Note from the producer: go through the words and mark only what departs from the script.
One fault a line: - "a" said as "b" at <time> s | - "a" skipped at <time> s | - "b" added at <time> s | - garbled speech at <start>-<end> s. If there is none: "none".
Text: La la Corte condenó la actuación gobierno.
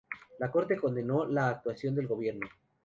- "la" skipped at 0.5 s
- "del" added at 1.9 s